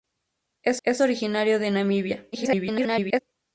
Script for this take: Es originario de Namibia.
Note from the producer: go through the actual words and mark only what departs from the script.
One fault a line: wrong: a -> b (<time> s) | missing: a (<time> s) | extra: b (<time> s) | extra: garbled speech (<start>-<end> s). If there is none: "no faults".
extra: es (0.8 s)
extra: garbled speech (2.3-3.2 s)